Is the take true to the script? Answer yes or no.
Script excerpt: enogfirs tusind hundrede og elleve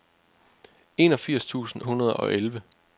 yes